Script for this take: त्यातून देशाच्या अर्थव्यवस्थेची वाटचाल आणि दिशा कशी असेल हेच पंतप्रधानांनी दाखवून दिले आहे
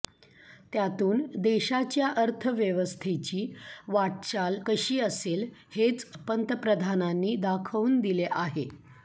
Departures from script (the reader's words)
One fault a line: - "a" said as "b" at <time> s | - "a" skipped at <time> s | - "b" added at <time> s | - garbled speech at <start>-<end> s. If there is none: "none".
- "आणि दिशा" skipped at 4.6 s